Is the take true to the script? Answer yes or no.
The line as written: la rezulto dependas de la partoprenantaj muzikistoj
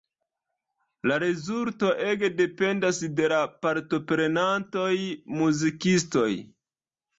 no